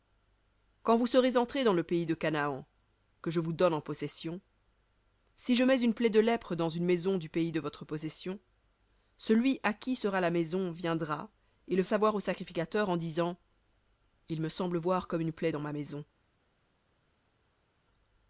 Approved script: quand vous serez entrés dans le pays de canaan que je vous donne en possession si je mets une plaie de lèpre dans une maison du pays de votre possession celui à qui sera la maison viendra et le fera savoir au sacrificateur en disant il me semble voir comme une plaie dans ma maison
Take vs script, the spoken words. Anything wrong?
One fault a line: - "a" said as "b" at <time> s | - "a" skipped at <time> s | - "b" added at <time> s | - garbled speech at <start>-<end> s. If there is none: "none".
- "fera" skipped at 11.8 s